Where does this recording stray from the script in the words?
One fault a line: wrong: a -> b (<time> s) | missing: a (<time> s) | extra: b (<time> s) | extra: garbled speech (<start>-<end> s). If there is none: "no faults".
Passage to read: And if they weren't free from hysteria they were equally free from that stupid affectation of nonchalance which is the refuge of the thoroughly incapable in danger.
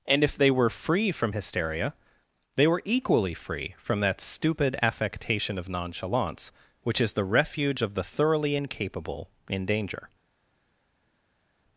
wrong: weren't -> were (0.5 s)